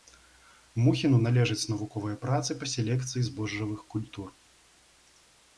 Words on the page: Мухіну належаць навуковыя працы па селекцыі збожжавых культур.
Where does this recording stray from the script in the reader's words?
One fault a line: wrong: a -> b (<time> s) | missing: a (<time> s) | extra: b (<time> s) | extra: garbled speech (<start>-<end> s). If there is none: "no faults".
no faults